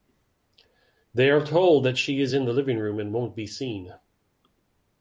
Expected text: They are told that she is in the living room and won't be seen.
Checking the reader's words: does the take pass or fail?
pass